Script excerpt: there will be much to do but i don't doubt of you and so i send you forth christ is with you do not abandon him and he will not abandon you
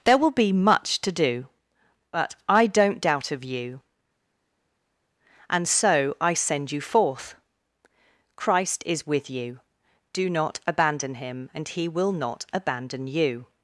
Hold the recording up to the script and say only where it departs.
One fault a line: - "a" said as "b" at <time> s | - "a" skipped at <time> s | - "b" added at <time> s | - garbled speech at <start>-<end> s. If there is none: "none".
none